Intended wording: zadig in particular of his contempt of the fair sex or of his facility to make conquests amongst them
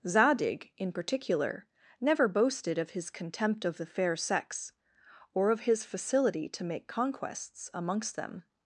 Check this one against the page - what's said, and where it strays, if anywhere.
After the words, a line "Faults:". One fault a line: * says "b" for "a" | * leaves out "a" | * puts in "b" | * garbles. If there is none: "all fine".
zadig in particular never boasted of his contempt of the fair sex or of his facility to make conquests amongst them
Faults:
* puts in "never boasted"